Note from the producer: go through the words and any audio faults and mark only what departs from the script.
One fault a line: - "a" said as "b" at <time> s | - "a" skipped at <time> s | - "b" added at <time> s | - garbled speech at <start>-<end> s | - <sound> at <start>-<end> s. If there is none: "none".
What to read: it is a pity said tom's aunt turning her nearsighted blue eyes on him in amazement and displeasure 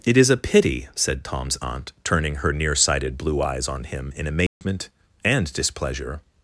- dropout at 4.5-4.6 s